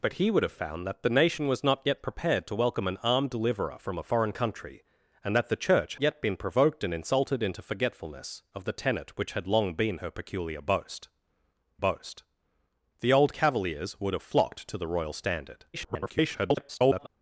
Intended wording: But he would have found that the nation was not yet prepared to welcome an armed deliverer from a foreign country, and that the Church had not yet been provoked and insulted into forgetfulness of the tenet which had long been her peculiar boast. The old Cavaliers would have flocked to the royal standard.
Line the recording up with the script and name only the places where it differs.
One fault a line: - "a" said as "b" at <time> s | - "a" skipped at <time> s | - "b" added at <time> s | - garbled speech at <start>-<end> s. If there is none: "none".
- "had not" skipped at 6.0 s
- "boast" added at 11.8 s
- garbled speech at 15.7-17.1 s